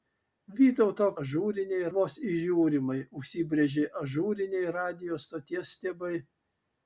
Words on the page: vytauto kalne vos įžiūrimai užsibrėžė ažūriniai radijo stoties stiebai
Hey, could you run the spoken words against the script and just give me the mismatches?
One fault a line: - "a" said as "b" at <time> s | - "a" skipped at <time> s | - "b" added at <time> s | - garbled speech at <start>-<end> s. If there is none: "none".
- "kalne" said as "ažūriniai" at 1.2 s